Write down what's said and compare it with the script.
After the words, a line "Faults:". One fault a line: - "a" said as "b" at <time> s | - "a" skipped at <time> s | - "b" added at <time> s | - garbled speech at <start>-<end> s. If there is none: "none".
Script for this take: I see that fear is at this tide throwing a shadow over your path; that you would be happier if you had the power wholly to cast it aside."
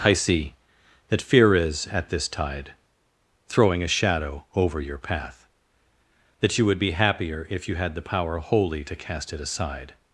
I see that fear is at this tide throwing a shadow over your path; that you would be happier if you had the power wholly to cast it aside."
Faults:
none